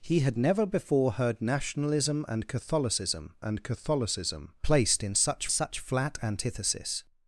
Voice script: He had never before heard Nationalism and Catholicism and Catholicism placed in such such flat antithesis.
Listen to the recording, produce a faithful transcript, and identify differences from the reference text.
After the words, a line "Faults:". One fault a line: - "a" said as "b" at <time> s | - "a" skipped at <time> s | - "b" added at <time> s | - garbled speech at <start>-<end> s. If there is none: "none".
He had never before heard Nationalism and Catholicism and Catholicism placed in such such flat antithesis.
Faults:
none